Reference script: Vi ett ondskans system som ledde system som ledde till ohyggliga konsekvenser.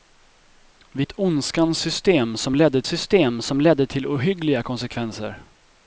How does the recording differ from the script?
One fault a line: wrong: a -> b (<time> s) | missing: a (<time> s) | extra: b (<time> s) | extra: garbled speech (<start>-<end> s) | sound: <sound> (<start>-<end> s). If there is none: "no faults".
no faults